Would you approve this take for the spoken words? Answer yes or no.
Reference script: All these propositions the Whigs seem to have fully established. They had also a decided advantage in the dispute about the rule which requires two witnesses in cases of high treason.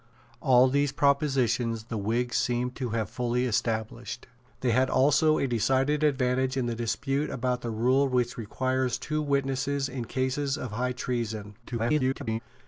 no